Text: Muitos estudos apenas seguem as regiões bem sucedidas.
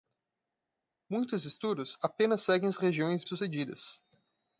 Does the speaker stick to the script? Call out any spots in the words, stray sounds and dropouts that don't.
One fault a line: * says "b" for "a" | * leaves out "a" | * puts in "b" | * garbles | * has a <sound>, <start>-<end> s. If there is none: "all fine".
* leaves out "bem"